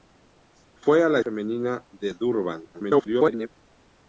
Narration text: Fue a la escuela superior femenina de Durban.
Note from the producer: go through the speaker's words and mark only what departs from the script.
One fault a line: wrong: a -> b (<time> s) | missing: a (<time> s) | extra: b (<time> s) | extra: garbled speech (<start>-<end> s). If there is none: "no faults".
missing: escuela superior (1.2 s)
extra: garbled speech (2.7-3.5 s)